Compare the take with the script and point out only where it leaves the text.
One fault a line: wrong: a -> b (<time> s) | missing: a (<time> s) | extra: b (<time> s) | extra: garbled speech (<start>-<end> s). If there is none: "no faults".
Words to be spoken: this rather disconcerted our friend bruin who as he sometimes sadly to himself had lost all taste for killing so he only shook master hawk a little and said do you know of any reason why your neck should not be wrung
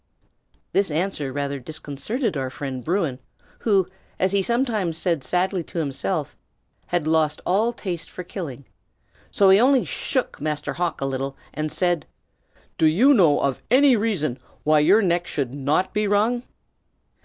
extra: answer (0.9 s)
extra: said (5.0 s)